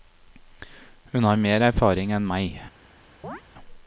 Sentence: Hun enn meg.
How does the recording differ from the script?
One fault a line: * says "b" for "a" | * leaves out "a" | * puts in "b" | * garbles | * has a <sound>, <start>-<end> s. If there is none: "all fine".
* puts in "har mer erfaring"
* has a chirp, 3.2-3.4 s